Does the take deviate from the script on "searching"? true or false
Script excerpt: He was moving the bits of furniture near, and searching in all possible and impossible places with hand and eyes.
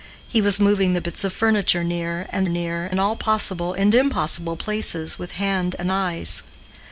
true